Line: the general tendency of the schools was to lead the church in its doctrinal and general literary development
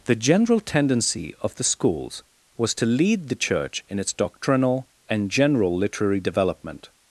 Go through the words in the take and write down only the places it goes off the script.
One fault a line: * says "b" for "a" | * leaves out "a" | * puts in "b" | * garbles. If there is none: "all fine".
all fine